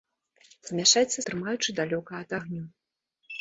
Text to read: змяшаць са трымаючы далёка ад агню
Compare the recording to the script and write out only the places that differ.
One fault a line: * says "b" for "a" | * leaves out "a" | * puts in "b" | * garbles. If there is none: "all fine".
all fine